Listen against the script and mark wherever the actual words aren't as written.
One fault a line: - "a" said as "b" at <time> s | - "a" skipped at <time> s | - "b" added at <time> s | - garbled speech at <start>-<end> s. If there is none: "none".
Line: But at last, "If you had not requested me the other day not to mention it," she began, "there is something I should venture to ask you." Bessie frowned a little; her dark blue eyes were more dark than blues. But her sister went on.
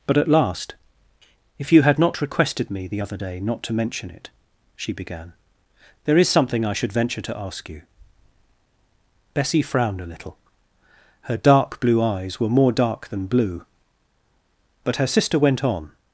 - "blues" said as "blue" at 13.3 s